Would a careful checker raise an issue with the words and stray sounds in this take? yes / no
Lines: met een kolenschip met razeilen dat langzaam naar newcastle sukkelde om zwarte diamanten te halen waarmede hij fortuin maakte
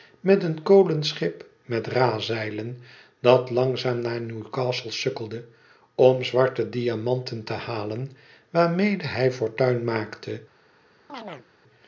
yes